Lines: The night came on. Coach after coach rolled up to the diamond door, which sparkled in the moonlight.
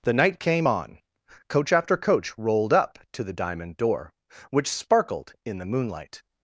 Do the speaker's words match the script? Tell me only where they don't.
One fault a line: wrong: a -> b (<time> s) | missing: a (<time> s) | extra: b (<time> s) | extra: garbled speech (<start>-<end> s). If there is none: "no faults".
no faults